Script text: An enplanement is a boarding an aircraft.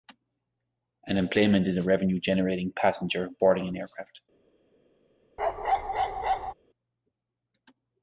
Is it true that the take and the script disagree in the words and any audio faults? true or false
true